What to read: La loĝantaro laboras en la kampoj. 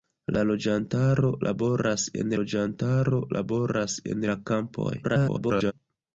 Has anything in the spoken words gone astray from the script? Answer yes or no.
yes